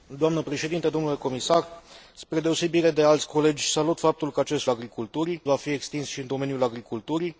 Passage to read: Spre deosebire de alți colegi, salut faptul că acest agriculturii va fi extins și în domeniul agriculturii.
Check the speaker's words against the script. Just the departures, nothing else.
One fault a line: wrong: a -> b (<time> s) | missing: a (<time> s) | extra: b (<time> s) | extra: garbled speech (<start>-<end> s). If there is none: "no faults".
no faults